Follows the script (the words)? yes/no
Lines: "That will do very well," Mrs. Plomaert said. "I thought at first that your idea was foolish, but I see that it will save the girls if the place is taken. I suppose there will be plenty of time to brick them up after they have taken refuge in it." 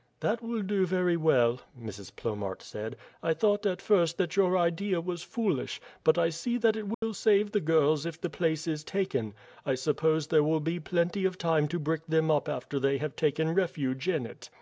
yes